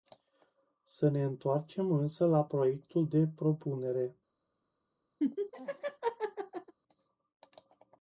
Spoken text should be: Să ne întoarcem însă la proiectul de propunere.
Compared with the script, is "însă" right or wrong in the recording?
right